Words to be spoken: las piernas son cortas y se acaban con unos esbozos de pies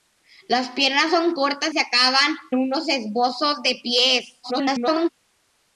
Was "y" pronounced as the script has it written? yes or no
no